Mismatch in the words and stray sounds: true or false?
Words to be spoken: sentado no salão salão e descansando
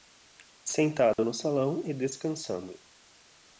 true